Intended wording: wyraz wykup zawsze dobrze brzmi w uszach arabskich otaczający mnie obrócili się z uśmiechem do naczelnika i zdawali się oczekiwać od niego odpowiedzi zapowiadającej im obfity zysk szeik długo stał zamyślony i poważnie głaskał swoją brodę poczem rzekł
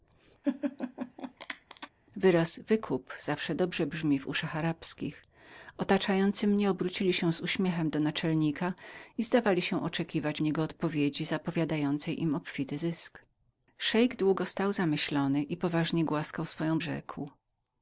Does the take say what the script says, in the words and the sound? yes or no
no